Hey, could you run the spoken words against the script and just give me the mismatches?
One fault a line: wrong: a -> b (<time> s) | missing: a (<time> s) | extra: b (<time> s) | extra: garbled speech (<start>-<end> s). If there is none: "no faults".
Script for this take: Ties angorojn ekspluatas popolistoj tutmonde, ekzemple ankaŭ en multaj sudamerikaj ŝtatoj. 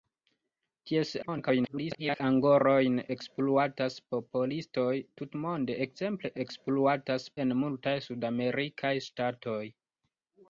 extra: garbled speech (1.2-2.2 s)
wrong: ankaŭ -> ekspluatas (6.4 s)